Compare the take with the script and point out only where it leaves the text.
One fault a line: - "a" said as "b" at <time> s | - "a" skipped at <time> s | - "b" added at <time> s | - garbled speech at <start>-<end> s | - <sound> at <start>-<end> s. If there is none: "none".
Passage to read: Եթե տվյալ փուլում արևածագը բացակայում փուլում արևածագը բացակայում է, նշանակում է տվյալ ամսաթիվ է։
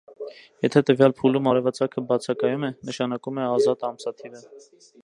- "փուլում արևածագը բացակայում" skipped at 2.7 s
- "տվյալ" said as "ազատ" at 3.6 s